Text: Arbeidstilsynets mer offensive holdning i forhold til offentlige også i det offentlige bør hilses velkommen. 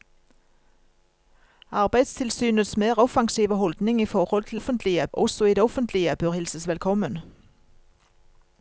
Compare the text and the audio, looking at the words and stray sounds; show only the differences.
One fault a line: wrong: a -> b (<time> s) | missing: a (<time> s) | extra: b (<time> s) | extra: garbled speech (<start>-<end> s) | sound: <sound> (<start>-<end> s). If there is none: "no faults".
no faults